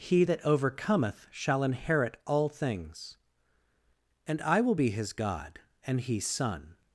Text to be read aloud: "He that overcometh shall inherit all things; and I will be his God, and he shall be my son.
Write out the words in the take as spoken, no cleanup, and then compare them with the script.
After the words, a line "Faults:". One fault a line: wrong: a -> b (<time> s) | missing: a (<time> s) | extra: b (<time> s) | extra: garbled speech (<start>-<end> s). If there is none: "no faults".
"He that overcometh shall inherit all things; and I will be his God, and he son.
Faults:
missing: shall be my (6.2 s)